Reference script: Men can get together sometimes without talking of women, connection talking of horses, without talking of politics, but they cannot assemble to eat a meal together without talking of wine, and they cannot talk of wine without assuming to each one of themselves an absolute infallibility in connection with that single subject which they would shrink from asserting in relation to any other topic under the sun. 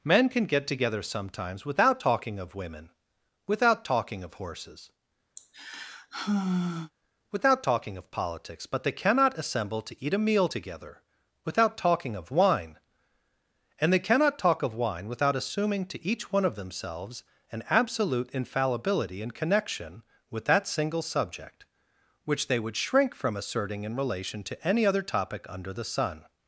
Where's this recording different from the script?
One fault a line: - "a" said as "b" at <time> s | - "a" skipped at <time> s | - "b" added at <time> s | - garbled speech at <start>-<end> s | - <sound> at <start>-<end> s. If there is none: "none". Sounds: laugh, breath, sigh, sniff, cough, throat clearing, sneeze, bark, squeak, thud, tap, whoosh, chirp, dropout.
- "connection" said as "without" at 3.5 s
- sigh at 5.4-6.9 s